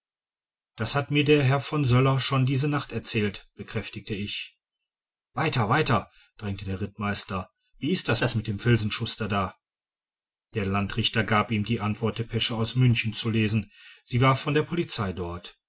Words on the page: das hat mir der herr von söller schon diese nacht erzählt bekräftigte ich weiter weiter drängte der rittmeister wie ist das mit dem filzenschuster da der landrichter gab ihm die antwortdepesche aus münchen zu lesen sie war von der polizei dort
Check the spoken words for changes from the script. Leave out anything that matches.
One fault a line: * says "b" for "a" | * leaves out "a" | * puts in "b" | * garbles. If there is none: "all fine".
* puts in "das"